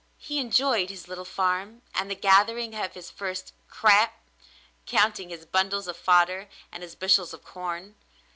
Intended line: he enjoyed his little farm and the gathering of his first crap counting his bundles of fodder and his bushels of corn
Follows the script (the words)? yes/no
yes